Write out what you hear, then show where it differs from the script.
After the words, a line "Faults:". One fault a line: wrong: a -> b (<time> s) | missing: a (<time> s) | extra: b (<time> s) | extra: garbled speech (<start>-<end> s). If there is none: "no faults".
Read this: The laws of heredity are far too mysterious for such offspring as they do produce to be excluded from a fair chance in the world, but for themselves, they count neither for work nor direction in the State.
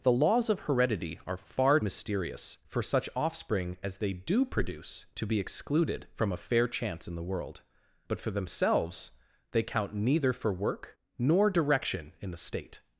The laws of heredity are far mysterious for such offspring as they do produce to be excluded from a fair chance in the world, but for themselves, they count neither for work nor direction in the State.
Faults:
missing: too (1.8 s)